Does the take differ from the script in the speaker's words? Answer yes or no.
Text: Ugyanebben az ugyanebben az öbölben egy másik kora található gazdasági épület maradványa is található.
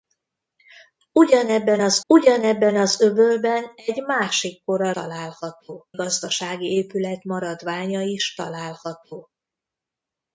no